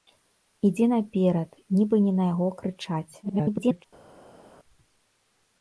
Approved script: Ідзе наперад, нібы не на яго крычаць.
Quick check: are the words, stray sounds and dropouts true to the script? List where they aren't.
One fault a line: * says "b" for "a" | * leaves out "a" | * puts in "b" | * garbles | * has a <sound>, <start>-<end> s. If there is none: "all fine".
* garbles